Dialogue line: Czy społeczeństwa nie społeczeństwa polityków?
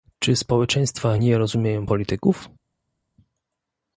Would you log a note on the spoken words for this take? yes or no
yes